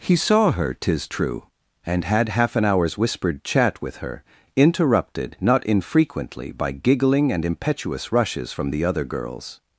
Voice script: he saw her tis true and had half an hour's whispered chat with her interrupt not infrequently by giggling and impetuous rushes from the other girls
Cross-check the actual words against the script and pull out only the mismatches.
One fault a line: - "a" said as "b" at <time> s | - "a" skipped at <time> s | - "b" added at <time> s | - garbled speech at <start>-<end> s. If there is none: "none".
- "interrupt" said as "interrupted" at 4.6 s